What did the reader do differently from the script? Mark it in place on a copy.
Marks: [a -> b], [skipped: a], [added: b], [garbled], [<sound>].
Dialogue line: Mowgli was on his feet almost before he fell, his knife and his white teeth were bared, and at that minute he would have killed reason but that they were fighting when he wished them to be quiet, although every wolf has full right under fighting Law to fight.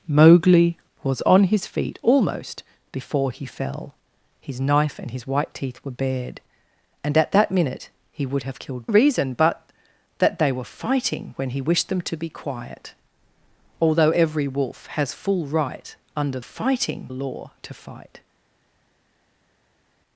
Mowgli was on his feet almost before he fell, his knife and his white teeth were bared, and at that minute he would have killed reason but that they were fighting when he wished them to be quiet, although every wolf has full right under fighting Law to fight.